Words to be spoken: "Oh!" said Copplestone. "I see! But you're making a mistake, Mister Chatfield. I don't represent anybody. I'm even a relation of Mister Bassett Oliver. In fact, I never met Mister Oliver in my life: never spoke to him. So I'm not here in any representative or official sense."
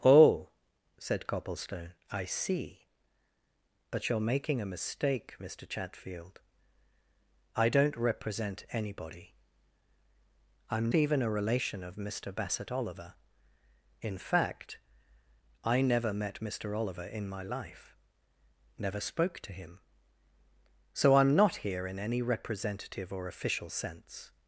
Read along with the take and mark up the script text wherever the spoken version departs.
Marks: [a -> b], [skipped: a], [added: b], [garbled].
"Oh!" said Copplestone. "I see! But you're making a mistake, Mister Chatfield. I don't represent anybody. I'm even a relation of Mister Bassett Oliver. In fact, I never met Mister Oliver in my life: never spoke to him. So I'm not here in any representative or official sense."